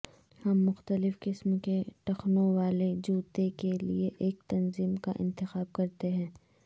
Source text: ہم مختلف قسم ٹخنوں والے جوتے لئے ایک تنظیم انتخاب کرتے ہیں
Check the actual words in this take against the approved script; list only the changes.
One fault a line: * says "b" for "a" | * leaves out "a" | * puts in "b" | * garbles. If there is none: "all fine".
* puts in "کے"
* puts in "کے"
* puts in "کا"